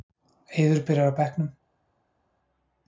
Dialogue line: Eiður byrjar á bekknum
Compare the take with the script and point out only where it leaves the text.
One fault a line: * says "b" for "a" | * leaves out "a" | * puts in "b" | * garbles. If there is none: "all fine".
all fine